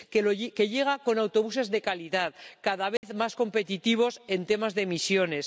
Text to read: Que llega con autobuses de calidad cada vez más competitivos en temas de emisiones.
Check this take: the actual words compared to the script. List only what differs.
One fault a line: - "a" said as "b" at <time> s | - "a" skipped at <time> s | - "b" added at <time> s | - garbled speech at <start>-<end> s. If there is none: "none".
none